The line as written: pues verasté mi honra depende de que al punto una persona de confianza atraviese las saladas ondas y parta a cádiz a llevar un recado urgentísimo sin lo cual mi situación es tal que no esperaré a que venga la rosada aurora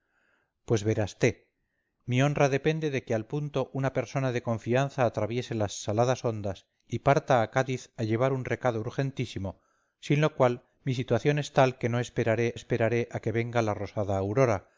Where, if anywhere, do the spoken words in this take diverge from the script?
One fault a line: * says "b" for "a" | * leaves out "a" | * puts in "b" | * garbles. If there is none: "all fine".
* puts in "esperaré"